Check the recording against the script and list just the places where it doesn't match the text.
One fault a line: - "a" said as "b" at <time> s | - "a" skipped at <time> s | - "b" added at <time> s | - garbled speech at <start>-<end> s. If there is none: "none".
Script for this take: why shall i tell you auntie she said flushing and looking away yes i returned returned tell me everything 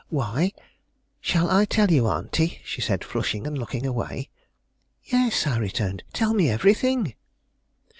- "returned" skipped at 6.0 s